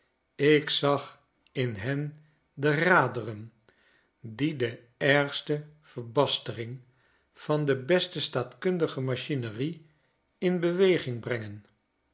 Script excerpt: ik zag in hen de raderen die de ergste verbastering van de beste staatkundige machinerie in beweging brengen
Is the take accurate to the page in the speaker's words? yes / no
yes